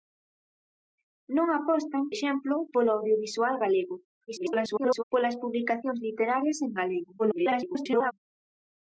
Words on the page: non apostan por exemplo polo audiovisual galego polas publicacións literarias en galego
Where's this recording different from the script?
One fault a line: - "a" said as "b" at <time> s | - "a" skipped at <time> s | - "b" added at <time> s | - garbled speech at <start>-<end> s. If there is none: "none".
- "por" skipped at 2.0 s
- garbled speech at 4.3-5.0 s
- garbled speech at 7.2-8.1 s